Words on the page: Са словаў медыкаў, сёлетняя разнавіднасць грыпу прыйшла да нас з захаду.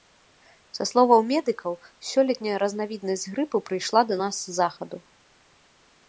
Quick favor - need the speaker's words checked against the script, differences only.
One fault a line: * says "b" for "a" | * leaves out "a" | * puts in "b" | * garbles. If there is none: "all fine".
all fine